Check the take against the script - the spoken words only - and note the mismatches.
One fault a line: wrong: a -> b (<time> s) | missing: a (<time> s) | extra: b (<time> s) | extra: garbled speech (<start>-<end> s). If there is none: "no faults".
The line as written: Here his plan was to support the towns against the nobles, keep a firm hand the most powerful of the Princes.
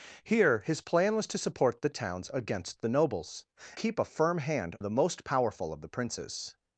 no faults